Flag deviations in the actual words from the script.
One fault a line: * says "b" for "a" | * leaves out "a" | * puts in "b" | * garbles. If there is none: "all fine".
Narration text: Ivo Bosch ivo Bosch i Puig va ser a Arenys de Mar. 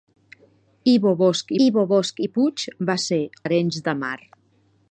all fine